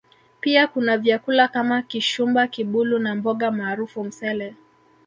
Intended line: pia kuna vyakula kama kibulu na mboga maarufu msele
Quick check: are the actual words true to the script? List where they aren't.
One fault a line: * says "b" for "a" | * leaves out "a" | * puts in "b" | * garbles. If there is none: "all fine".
* puts in "kishumba"